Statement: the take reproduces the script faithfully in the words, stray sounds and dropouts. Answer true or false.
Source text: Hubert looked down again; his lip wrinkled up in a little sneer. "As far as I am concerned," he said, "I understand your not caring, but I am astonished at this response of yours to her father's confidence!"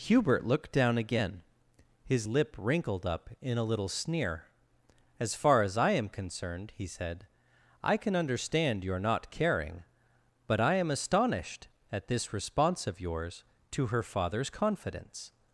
false